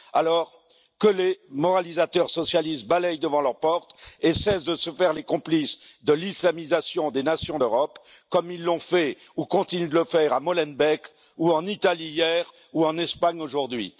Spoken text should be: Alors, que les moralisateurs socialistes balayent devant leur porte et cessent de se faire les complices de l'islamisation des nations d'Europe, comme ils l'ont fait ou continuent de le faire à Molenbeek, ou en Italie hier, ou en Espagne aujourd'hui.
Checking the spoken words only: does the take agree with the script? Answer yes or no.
yes